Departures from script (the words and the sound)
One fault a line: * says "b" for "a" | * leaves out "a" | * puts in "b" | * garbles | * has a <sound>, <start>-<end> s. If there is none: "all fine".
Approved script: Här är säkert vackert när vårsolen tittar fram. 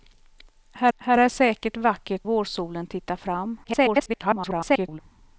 * puts in "här"
* leaves out "när"
* garbles